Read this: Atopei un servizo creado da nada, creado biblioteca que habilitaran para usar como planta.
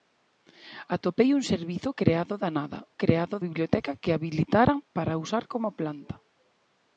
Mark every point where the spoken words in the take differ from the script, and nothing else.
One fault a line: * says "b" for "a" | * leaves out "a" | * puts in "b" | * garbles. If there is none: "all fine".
all fine